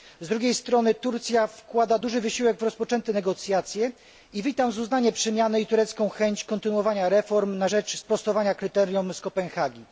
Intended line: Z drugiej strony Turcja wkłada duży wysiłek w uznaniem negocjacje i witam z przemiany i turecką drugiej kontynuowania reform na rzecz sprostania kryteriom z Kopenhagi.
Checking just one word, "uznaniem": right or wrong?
wrong